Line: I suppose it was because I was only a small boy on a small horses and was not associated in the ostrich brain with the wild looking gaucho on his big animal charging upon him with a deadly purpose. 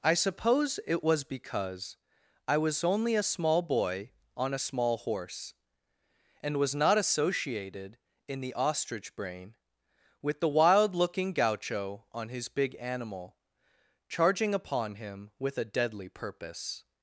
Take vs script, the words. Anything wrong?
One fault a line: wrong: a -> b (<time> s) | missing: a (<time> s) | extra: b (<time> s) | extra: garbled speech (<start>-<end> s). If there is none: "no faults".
wrong: horses -> horse (5.0 s)